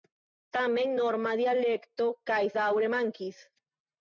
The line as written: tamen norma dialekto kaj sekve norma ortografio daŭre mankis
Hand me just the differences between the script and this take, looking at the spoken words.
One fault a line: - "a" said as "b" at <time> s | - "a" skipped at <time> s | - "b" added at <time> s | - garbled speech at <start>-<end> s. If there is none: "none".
- "sekve norma ortografio" skipped at 2.4 s